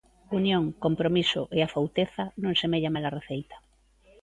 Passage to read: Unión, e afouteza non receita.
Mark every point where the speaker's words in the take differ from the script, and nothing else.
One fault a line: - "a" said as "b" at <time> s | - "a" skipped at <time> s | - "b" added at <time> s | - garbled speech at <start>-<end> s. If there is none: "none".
- "compromiso" added at 0.8 s
- "semella mala" added at 2.6 s